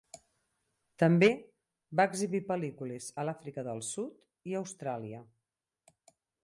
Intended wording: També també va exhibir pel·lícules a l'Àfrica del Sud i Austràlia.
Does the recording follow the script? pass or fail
fail